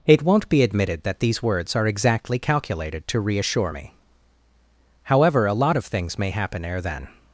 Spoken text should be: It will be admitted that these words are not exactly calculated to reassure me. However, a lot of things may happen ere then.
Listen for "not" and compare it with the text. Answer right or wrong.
wrong